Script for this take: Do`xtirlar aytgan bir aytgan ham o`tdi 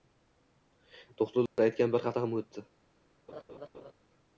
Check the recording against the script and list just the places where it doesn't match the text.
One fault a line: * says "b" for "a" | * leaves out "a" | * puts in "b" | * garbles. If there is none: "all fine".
* says "hafta" for "aytgan"